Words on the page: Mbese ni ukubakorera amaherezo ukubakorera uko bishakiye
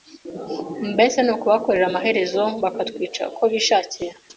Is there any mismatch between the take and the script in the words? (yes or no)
yes